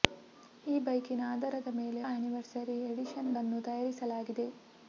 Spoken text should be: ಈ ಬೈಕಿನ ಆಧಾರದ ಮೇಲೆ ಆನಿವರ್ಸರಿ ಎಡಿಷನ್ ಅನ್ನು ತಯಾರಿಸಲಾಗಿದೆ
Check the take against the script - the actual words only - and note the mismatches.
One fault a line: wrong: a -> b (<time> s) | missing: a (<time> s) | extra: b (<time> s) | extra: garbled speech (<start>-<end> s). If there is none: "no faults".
no faults